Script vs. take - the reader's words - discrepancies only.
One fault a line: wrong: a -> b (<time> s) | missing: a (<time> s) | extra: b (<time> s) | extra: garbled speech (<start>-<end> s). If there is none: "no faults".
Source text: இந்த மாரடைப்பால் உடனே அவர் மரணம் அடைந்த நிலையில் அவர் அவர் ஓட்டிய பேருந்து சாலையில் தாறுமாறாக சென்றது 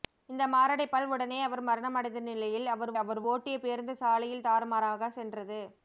no faults